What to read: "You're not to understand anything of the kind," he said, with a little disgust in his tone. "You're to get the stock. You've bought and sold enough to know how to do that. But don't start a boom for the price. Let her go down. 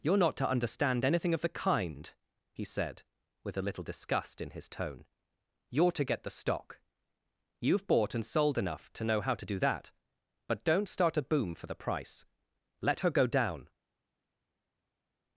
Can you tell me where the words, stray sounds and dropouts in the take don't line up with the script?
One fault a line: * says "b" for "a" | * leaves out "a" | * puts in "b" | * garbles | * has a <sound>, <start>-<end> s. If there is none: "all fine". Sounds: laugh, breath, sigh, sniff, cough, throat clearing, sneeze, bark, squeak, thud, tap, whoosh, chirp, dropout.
all fine